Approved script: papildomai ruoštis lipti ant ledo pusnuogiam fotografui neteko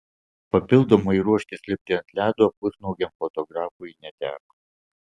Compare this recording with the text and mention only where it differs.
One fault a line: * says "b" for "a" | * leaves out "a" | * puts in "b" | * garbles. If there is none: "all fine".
all fine